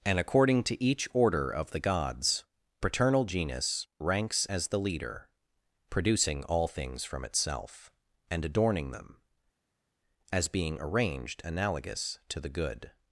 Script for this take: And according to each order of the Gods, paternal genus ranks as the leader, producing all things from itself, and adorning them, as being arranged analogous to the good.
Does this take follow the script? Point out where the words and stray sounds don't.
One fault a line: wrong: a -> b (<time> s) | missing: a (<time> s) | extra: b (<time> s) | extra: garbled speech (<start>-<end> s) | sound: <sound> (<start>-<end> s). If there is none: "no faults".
no faults